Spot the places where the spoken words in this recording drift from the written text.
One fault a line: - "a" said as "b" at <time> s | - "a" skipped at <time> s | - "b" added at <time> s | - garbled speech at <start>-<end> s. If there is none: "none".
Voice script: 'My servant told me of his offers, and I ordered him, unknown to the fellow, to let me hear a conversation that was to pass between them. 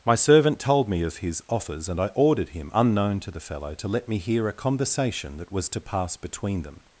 none